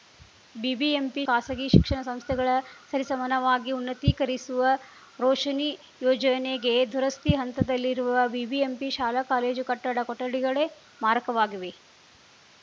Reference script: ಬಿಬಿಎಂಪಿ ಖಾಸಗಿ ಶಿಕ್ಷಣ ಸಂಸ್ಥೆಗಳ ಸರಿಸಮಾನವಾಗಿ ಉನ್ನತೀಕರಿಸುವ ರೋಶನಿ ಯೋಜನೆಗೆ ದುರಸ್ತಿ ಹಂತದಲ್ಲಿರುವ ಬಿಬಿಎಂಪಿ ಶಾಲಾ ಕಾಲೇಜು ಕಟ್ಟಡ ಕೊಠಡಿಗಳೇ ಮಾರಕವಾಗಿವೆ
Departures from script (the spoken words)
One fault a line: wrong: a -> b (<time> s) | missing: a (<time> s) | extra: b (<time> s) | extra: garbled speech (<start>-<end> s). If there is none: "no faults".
no faults